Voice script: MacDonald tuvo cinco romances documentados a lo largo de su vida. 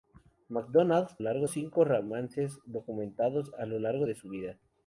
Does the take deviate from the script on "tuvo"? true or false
true